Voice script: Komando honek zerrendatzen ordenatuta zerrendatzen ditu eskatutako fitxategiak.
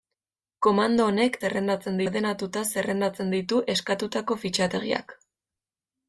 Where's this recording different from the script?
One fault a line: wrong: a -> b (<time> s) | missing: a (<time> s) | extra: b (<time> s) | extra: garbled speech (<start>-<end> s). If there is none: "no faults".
no faults